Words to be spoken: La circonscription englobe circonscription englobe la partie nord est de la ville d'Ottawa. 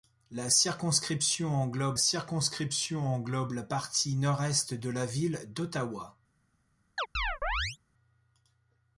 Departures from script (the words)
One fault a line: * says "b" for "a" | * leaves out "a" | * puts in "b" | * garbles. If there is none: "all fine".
all fine